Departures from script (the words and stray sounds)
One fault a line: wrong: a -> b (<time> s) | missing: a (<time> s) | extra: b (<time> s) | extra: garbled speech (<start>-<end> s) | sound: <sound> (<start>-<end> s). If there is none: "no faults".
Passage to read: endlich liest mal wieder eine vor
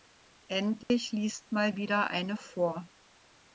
sound: dropout (0.8-0.9 s)